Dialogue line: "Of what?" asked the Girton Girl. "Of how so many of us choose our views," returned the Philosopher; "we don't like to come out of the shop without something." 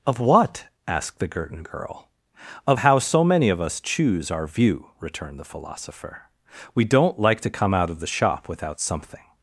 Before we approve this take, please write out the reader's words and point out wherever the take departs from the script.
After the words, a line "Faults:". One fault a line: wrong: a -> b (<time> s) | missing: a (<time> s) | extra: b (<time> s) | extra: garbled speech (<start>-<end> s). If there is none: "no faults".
"Of what?" asked the Girton Girl. "Of how so many of us choose our view," returned the Philosopher; "we don't like to come out of the shop without something."
Faults:
wrong: views -> view (4.5 s)